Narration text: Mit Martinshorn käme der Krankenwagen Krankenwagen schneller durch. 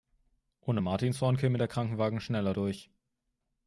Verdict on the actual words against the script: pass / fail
fail